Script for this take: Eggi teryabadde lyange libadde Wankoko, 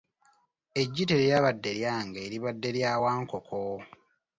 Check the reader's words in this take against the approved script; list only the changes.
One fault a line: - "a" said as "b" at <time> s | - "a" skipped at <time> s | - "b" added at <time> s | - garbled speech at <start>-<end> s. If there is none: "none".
- "lya" added at 2.7 s